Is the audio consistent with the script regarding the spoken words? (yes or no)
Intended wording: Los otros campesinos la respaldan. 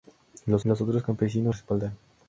no